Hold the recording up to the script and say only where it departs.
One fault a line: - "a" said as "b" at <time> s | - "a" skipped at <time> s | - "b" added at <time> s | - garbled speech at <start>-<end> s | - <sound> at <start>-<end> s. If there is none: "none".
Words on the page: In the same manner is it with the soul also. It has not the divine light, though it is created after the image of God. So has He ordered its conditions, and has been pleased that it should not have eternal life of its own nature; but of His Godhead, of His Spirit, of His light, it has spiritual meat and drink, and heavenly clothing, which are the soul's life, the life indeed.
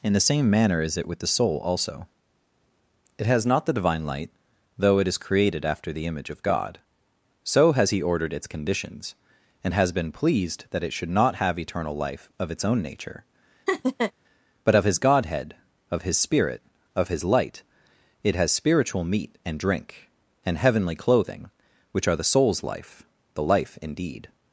- laugh at 13.7-14.1 s